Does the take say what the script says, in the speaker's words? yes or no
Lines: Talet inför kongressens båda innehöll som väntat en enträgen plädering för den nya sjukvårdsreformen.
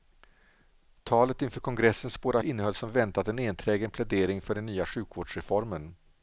yes